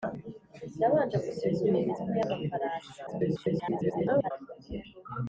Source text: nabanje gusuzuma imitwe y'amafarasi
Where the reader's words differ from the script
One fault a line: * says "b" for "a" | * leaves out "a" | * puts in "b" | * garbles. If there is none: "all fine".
* garbles